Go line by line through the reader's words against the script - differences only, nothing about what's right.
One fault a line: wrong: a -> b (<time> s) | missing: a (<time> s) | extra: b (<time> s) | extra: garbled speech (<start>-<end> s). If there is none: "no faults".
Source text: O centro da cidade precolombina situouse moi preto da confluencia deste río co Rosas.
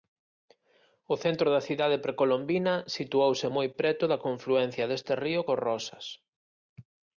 no faults